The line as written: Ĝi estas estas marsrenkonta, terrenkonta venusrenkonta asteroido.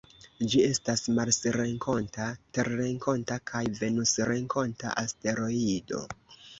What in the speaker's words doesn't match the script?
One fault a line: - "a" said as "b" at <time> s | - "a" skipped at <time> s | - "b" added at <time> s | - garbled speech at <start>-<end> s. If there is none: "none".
- "estas" skipped at 1.0 s
- "kaj" added at 3.5 s